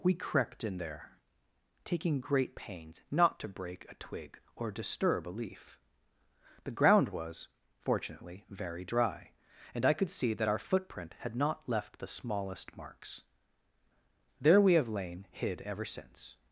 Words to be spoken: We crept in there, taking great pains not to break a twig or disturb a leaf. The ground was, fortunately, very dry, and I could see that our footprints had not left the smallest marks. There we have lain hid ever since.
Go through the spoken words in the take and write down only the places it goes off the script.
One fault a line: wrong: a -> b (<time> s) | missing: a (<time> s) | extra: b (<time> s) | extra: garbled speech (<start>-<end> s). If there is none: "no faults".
wrong: footprints -> footprint (10.6 s)